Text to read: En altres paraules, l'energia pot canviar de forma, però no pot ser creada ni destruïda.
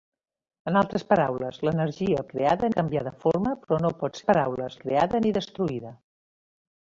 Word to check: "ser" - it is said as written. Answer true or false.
false